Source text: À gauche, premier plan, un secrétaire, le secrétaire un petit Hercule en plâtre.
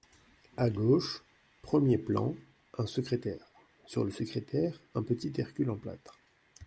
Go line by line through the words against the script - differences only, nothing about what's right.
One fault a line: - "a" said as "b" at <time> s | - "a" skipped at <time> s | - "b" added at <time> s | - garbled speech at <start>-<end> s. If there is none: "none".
- "sur" added at 3.9 s